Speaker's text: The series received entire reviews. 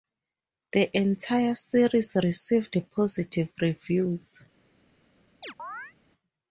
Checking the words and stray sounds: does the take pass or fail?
fail